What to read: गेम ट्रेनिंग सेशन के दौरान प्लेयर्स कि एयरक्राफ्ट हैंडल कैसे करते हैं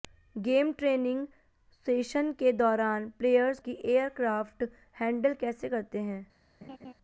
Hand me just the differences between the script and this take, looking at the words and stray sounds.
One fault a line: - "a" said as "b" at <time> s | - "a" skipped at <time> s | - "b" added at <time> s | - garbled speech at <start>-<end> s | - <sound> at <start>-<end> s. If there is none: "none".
- laugh at 6.6-6.9 s